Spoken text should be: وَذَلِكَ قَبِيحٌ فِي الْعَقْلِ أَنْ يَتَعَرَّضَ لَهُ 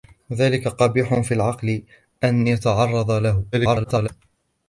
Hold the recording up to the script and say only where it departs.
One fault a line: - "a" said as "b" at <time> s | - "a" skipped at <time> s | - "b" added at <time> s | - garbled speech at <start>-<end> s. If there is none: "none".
- garbled speech at 3.5-4.1 s